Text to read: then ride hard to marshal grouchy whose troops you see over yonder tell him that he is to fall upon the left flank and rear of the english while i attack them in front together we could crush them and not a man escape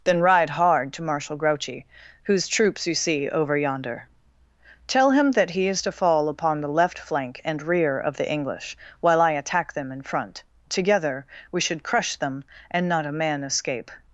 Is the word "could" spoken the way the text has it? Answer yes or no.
no